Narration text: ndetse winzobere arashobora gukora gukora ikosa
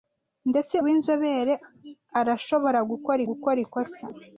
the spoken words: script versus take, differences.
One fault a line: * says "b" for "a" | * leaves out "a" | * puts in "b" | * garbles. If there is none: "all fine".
all fine